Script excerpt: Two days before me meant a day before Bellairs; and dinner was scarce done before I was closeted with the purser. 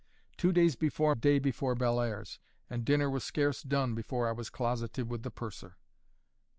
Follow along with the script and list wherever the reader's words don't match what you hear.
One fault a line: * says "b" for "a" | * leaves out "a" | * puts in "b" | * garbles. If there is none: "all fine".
* leaves out "me meant a"